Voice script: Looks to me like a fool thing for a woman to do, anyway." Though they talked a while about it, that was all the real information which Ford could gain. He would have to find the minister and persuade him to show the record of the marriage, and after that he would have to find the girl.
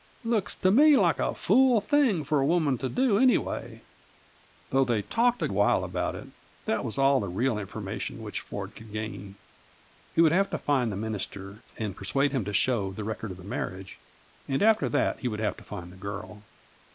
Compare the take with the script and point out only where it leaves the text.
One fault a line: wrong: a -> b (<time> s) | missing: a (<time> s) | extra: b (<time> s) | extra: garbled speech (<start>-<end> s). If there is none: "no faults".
no faults